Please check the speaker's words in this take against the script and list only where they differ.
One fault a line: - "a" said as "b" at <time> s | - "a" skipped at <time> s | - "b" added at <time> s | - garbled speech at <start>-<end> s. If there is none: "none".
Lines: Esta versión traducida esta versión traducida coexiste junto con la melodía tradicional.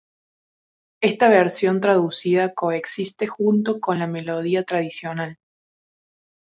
- "esta versión traducida" skipped at 2.5 s